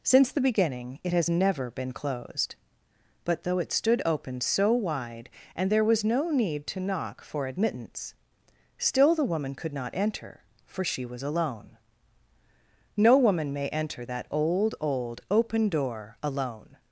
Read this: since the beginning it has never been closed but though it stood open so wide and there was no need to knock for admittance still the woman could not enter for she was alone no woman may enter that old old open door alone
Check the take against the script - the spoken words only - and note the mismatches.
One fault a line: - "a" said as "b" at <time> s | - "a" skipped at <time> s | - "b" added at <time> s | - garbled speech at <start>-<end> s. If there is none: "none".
none